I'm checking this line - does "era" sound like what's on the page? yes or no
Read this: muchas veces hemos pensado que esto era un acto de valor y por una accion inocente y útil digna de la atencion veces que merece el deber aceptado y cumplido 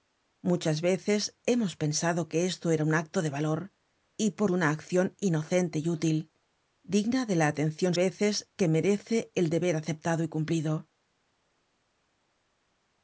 yes